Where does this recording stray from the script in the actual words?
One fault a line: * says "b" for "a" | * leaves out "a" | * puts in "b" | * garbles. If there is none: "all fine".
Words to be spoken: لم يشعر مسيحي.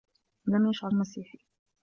all fine